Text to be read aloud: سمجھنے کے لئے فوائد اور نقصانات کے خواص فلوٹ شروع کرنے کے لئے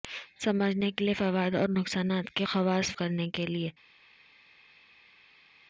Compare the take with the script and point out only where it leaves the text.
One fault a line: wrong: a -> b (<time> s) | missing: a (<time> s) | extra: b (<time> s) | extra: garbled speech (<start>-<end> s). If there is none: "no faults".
missing: فلوٹ شروع (2.9 s)